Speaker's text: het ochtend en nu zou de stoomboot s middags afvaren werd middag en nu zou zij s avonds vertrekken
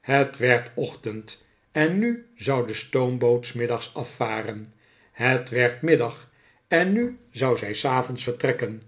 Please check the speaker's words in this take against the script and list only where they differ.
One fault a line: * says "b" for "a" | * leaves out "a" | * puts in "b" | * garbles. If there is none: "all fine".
* puts in "werd"
* puts in "het"